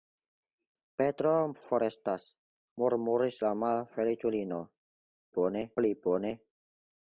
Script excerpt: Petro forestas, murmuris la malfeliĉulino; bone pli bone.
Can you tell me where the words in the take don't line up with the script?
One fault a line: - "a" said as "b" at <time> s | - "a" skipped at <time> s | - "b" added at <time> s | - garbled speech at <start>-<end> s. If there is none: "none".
none